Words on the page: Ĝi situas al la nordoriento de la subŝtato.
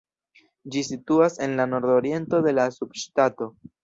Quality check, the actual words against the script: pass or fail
fail